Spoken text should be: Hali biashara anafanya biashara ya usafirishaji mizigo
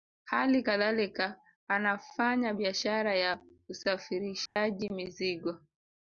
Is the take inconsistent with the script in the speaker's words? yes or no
yes